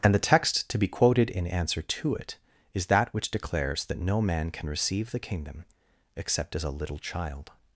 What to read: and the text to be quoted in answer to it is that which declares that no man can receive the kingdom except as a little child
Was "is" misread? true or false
false